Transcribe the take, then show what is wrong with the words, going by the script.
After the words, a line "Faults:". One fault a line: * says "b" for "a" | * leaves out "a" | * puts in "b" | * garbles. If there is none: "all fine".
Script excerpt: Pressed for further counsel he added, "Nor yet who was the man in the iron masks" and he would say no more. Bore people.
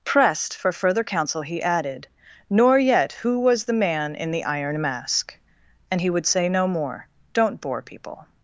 Pressed for further counsel he added, "Nor yet who was the man in the iron mask" and he would say no more. Don't bore people.
Faults:
* says "mask" for "masks"
* puts in "Don't"